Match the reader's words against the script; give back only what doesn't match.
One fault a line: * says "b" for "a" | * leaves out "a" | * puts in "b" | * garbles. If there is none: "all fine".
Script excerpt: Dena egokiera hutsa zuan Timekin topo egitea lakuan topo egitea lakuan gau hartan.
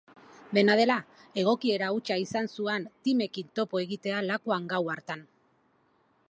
* puts in "dela"
* puts in "izan"
* leaves out "topo egitea lakuan"